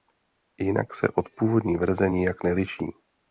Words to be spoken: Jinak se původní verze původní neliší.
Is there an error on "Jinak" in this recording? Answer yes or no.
no